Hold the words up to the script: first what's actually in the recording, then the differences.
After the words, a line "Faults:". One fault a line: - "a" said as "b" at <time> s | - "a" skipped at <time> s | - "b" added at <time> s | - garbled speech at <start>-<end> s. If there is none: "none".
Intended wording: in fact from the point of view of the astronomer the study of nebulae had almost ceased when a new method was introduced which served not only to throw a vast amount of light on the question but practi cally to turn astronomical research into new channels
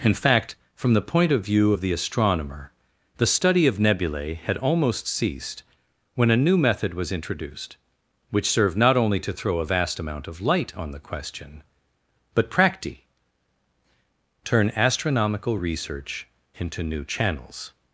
in fact from the point of view of the astronomer the study of nebulae had almost ceased when a new method was introduced which served not only to throw a vast amount of light on the question but practi turn astronomical research into new channels
Faults:
- "cally to" skipped at 13.0 s